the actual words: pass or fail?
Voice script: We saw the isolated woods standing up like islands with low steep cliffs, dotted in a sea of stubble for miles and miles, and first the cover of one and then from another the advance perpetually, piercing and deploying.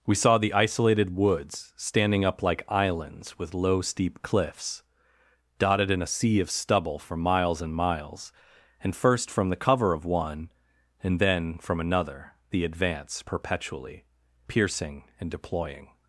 fail